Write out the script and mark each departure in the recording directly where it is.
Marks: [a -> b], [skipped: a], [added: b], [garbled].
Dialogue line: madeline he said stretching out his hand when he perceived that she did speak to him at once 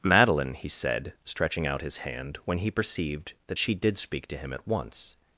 madeline he said stretching out his hand when he perceived that she did speak to him at once